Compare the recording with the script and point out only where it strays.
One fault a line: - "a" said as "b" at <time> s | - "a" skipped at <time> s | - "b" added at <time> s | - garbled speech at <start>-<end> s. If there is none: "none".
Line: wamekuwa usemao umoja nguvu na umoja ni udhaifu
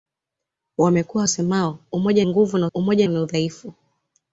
none